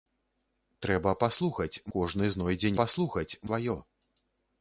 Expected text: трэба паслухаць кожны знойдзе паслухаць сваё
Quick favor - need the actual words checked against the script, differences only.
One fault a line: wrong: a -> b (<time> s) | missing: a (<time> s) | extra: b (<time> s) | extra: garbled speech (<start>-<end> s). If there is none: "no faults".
no faults